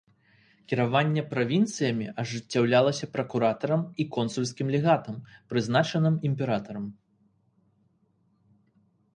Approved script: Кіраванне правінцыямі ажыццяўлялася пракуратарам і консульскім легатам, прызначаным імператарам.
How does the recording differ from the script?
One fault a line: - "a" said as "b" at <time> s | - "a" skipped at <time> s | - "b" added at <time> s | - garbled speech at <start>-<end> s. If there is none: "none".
none